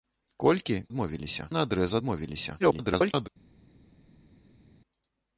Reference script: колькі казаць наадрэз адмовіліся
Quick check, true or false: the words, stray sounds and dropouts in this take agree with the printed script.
false